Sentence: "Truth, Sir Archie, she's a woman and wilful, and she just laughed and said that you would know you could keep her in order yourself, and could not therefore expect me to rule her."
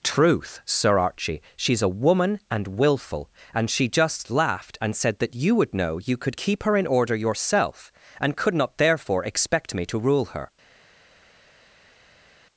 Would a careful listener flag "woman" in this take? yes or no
no